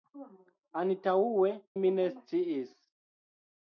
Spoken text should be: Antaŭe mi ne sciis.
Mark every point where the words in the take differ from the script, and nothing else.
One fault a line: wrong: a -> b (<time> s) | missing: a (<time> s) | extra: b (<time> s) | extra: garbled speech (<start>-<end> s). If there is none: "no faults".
no faults